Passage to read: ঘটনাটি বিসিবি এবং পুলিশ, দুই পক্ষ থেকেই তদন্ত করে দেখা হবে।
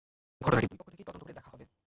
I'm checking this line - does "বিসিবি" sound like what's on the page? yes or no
no